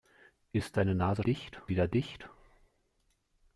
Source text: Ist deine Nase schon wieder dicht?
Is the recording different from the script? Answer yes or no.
yes